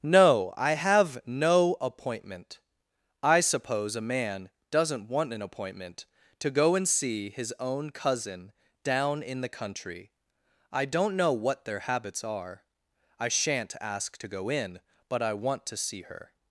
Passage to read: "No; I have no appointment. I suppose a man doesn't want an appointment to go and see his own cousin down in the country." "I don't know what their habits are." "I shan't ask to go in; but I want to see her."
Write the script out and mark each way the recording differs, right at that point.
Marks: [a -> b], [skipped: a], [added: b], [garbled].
"No; I have no appointment. I suppose a man doesn't want an appointment to go and see his own cousin down in the country." "I don't know what their habits are." "I shan't ask to go in; but I want to see her."